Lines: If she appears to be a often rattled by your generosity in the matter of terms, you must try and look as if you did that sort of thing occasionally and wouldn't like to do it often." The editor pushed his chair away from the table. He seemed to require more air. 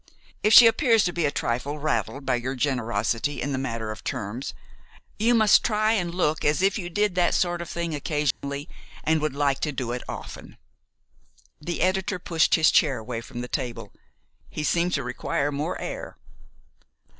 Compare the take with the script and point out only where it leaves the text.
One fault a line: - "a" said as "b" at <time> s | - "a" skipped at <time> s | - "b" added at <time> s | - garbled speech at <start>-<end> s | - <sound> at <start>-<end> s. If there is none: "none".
- "often" said as "trifle" at 1.3 s
- dropout at 8.3-8.4 s
- "wouldn't" said as "would" at 9.2 s